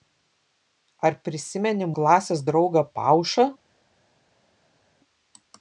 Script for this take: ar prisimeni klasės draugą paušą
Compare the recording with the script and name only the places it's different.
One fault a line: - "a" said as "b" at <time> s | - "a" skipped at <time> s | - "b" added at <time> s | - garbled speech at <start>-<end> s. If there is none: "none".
none